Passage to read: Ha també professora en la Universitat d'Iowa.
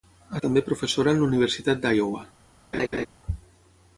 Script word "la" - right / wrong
right